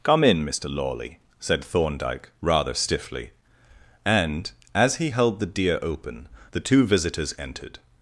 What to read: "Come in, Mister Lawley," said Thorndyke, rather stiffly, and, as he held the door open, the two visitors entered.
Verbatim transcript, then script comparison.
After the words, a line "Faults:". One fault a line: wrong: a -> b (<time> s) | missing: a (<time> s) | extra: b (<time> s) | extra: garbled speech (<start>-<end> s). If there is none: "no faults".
"Come in, Mister Lawley," said Thorndyke, rather stiffly, and, as he held the deer open, the two visitors entered.
Faults:
wrong: door -> deer (5.5 s)